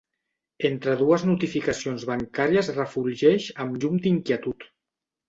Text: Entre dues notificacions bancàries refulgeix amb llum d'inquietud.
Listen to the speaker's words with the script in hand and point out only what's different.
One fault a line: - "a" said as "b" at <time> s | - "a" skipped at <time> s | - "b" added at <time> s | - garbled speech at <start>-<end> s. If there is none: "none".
none